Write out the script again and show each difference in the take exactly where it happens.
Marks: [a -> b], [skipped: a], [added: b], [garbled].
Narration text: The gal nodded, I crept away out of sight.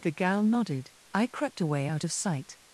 The gal nodded, I crept away out of sight.